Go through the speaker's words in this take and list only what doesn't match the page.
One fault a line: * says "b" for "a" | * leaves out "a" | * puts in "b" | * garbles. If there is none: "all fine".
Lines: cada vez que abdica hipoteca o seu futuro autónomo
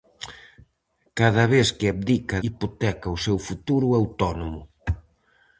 all fine